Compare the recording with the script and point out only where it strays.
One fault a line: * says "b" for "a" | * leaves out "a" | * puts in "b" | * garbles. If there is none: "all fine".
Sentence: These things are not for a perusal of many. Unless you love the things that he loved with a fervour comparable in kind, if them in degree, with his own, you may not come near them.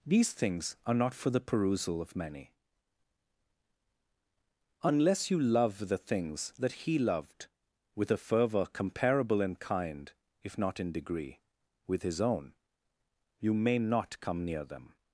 * says "the" for "a"
* says "not" for "them"